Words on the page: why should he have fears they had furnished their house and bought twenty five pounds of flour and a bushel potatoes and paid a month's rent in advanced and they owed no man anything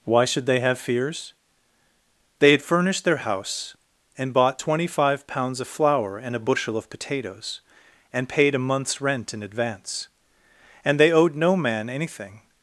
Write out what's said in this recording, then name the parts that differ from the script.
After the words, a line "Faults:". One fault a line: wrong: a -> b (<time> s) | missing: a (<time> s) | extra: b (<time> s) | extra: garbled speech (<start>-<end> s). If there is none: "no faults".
why should they have fears they had furnished their house and bought twenty five pounds of flour and a bushel of potatoes and paid a month's rent in advance and they owed no man anything
Faults:
wrong: he -> they (0.5 s)
extra: of (6.8 s)
wrong: advanced -> advance (9.4 s)